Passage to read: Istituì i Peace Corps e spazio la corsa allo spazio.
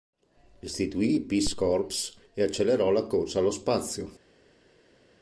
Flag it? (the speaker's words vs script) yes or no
yes